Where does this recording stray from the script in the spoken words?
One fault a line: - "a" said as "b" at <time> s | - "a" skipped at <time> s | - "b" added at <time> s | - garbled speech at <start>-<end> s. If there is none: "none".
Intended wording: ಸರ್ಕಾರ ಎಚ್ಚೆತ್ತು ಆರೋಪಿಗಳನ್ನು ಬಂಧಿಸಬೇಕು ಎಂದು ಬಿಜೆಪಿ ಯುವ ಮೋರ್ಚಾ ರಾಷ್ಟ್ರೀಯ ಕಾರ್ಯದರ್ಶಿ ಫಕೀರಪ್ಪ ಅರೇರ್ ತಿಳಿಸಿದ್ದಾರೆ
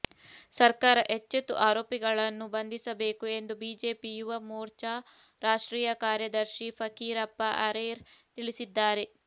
none